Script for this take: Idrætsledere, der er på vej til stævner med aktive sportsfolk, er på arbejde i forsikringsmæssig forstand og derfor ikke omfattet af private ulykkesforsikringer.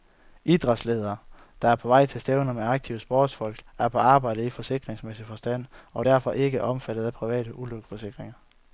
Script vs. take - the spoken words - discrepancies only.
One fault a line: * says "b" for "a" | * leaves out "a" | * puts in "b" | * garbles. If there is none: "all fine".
all fine